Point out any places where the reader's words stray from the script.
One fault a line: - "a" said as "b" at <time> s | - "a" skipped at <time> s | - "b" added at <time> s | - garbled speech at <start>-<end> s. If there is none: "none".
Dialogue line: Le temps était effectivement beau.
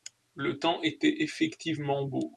none